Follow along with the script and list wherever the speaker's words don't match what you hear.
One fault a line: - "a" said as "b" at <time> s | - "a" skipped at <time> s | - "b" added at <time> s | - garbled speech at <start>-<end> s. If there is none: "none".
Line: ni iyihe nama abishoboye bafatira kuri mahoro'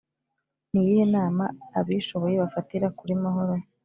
none